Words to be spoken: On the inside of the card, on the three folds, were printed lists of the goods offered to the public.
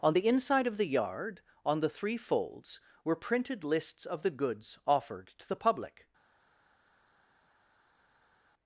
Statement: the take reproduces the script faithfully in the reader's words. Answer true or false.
false